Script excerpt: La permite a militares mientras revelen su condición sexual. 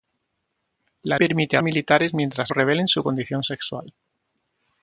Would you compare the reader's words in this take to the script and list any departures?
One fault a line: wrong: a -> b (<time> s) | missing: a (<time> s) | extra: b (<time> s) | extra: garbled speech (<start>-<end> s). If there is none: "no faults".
no faults